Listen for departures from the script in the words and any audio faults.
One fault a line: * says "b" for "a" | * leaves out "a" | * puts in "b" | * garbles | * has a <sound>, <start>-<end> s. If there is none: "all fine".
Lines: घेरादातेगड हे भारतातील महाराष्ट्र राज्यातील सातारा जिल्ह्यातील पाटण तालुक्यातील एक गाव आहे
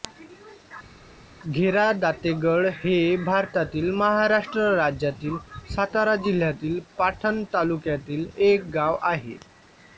all fine